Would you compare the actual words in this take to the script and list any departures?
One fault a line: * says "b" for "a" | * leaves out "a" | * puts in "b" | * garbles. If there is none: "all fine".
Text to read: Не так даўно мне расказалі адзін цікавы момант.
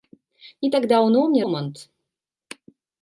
* leaves out "расказалі адзін цікавы"